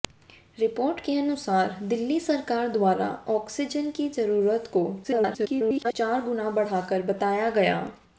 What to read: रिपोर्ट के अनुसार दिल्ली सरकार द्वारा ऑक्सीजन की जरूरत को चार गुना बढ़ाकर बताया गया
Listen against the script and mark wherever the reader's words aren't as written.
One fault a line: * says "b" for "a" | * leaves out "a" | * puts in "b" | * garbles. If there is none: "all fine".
* garbles